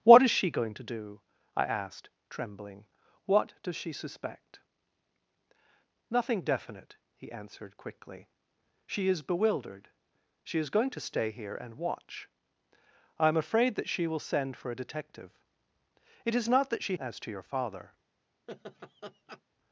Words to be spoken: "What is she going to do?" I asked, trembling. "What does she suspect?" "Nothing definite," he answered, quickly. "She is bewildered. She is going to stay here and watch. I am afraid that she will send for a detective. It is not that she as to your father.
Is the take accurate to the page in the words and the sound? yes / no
no